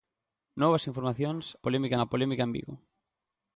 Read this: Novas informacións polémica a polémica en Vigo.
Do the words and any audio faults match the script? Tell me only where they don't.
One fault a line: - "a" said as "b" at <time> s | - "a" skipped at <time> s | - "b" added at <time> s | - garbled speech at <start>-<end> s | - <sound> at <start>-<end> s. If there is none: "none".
none